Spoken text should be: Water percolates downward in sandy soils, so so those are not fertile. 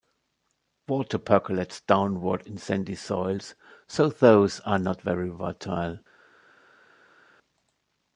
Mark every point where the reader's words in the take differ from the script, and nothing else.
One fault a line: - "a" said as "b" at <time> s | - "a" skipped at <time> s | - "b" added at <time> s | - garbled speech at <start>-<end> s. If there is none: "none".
- "so" skipped at 4.1 s
- "very" added at 5.0 s